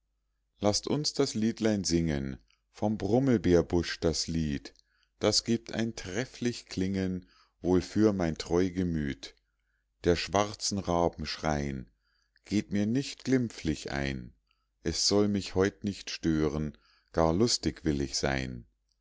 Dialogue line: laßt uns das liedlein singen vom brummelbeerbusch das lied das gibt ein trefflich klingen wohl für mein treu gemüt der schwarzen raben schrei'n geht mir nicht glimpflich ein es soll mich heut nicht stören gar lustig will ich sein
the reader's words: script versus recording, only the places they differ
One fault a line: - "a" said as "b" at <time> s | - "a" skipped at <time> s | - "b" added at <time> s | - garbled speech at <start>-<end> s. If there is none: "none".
none